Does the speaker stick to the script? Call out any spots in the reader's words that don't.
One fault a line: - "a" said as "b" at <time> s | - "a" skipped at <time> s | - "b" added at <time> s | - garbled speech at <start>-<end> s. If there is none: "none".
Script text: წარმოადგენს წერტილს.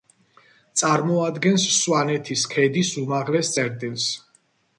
- "სვანეთის ქედის უმაღლეს" added at 1.8 s